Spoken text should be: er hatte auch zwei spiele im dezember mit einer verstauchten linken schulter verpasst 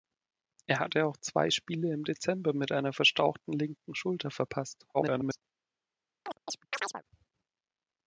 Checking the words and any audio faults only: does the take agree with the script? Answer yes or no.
no